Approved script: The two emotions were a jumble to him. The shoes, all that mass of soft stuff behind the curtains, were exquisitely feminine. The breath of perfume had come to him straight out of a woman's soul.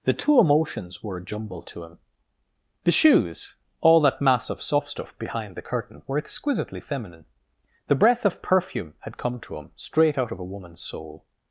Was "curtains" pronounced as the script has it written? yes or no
no